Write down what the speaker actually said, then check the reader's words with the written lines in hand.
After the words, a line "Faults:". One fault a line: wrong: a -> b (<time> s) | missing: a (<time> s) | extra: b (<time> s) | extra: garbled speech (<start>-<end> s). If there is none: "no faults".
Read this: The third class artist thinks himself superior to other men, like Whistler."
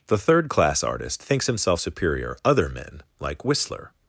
The third class artist thinks himself superior other men, like Whistler."
Faults:
missing: to (2.4 s)